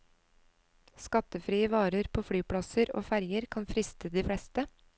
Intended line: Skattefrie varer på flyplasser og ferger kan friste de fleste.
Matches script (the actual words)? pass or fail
pass